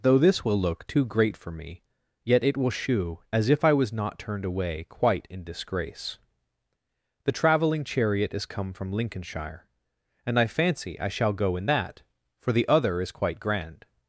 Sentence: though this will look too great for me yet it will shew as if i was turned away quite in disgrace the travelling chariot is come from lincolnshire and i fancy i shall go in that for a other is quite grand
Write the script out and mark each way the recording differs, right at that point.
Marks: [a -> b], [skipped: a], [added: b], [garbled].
though this will look too great for me yet it will shew as if i was [added: not] turned away quite in disgrace the travelling chariot is come from lincolnshire and i fancy i shall go in that for [a -> the] other is quite grand